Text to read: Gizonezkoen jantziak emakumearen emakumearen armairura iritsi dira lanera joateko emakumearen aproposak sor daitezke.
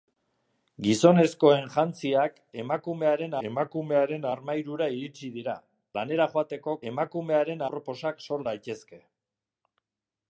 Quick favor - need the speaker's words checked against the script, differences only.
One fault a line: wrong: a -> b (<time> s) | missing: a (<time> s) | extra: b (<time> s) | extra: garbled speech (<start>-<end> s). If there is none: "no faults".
no faults